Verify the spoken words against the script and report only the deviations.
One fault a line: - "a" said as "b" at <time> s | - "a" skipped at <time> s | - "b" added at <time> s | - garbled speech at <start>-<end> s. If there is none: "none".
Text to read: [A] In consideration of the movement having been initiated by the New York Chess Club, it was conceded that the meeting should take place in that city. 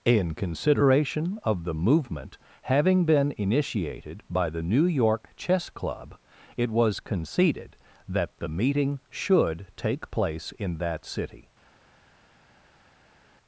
- "A" skipped at 0.1 s